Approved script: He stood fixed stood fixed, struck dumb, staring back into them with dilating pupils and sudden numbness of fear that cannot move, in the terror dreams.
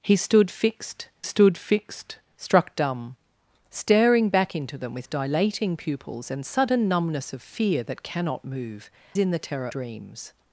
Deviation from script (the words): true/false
false